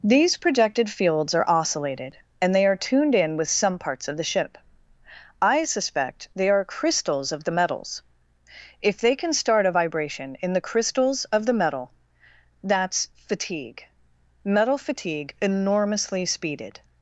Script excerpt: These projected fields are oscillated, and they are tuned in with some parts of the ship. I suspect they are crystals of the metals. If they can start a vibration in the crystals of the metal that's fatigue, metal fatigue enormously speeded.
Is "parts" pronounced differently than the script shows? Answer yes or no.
no